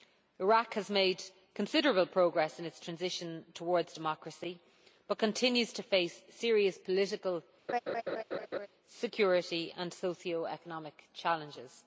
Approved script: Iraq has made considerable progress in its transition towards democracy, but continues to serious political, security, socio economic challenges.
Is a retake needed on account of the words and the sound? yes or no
yes